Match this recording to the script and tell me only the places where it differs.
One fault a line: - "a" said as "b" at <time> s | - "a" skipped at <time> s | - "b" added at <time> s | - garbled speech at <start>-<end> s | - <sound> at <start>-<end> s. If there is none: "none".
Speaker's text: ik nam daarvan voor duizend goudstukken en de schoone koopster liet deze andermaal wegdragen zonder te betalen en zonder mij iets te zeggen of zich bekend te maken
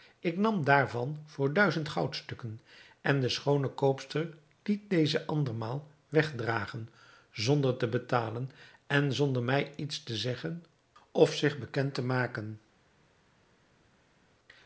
none